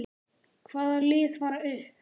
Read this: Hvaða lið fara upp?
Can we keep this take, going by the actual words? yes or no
yes